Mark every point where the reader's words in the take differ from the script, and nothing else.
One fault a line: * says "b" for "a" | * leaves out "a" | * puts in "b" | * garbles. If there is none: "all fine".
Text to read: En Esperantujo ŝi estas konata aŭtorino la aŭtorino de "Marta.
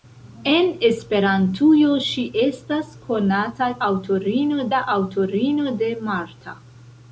all fine